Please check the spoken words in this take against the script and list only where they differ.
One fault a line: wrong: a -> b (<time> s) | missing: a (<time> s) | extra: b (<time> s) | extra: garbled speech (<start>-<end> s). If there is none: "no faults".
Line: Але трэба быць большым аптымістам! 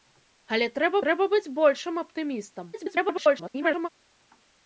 extra: трэба (1.0 s)
extra: garbled speech (2.7-3.9 s)